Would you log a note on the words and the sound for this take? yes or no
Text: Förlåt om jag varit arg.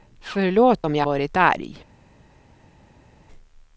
no